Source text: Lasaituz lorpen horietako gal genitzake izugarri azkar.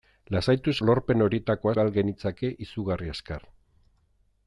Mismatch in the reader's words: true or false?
false